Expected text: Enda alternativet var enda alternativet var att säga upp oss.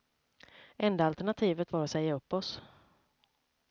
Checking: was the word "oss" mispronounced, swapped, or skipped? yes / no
no